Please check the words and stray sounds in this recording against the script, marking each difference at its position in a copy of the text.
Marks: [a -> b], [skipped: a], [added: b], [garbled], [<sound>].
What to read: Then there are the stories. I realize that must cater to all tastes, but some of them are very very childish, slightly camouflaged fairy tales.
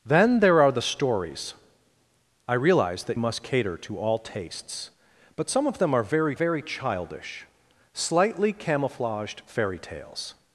Then there are the stories. I realize that must cater to all tastes, but some of them are very very childish, slightly camouflaged fairy tales.